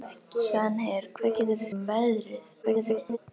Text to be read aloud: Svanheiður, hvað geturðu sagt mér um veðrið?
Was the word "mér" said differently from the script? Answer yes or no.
yes